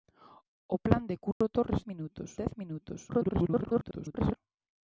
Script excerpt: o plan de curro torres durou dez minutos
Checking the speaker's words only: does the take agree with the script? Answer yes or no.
no